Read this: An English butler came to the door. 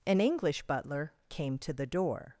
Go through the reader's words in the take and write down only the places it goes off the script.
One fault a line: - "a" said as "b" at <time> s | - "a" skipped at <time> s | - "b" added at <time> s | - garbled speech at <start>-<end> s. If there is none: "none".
none